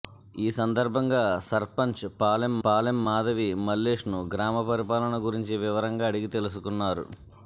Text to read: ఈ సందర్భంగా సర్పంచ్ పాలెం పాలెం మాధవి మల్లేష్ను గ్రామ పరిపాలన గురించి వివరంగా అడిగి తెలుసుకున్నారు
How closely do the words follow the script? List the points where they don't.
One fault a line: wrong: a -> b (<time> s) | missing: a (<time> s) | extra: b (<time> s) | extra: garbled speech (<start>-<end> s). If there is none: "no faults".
no faults